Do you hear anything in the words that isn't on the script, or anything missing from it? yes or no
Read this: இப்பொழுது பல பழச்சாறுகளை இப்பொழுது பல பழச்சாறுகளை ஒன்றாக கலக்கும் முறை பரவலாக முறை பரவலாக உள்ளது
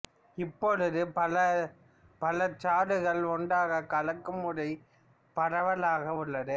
yes